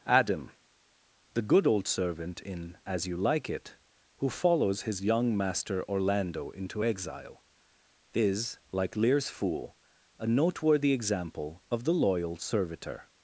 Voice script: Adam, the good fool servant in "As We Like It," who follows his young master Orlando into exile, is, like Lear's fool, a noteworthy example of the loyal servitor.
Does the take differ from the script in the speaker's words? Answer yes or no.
yes